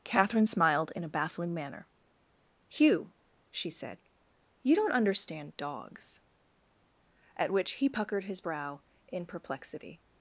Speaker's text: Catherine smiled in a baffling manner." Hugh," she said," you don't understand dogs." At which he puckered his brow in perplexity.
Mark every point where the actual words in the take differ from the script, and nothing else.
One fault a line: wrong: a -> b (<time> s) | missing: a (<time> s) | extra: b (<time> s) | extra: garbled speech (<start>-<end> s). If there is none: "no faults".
no faults